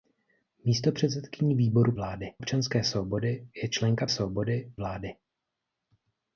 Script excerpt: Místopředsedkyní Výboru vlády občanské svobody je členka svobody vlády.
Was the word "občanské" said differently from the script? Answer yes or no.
no